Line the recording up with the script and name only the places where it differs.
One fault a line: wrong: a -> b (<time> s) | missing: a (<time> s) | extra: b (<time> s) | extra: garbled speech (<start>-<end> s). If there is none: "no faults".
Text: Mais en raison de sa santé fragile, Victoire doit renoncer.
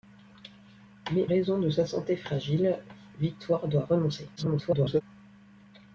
missing: en (1.3 s)
extra: garbled speech (4.4-5.0 s)